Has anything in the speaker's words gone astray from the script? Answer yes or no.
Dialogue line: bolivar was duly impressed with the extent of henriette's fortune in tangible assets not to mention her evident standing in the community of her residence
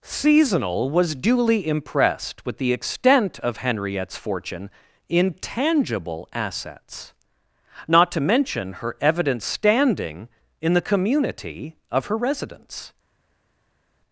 yes